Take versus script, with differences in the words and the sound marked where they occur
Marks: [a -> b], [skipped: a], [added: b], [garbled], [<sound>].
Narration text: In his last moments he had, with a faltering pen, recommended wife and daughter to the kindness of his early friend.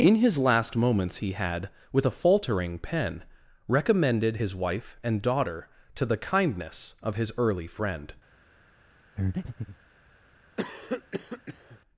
In his last moments he had, with a faltering pen, recommended [added: his] wife and daughter to the kindness of his early friend. [breath] [cough]